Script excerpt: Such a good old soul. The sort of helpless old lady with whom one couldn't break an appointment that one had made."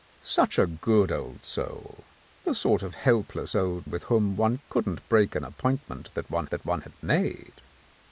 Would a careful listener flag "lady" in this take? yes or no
yes